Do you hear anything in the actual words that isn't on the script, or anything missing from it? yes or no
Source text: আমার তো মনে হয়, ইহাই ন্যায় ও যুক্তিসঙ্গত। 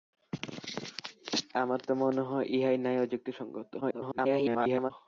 yes